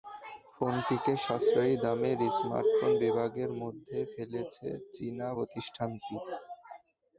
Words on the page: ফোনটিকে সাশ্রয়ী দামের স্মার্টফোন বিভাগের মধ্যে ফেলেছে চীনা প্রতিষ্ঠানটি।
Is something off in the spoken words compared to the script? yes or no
no